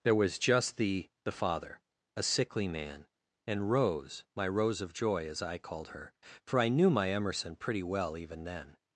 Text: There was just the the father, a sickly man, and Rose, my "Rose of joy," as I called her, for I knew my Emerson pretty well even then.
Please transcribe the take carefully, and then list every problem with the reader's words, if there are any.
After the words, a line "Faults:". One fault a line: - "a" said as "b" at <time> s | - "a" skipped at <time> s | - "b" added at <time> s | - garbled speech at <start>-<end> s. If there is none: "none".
There was just the the father, a sickly man, and Rose, my "Rose of joy," as I called her, for I knew my Emerson pretty well even then.
Faults:
none